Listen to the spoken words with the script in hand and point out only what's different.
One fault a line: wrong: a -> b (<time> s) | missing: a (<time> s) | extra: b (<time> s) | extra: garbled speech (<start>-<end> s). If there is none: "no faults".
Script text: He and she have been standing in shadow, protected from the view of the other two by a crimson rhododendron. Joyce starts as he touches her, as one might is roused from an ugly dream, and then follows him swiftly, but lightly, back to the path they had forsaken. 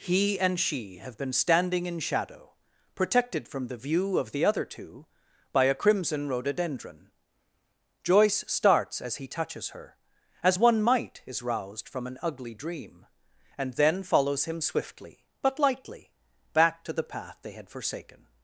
no faults